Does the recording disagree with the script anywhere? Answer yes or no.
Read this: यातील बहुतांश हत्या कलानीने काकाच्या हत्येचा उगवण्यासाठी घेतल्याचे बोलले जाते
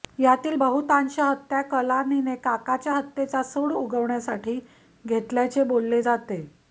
yes